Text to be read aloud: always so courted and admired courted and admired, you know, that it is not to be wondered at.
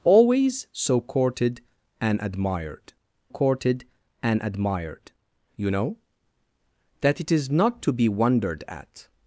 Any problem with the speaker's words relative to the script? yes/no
no